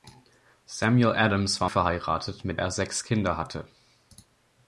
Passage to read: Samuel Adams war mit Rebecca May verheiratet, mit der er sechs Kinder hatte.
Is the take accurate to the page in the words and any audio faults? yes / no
no